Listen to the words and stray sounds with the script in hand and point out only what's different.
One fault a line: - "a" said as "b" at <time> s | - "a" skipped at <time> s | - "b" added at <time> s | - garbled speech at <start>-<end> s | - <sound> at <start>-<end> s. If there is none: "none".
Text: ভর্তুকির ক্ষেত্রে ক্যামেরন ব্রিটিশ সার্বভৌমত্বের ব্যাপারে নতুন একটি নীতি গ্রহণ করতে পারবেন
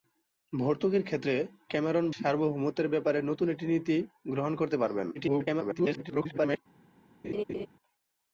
- "ব্রিটিশ" skipped at 2.0 s
- garbled speech at 5.1-6.6 s
- laugh at 7.2-7.7 s